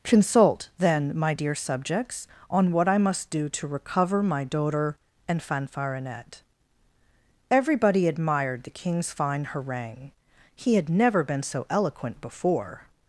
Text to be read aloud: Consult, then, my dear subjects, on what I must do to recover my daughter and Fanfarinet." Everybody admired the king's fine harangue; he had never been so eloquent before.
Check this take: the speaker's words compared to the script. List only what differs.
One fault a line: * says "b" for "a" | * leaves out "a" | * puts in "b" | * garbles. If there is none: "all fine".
all fine